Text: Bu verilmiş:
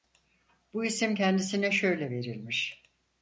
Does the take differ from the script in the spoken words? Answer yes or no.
yes